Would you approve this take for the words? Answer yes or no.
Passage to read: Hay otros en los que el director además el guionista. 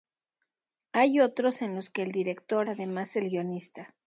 yes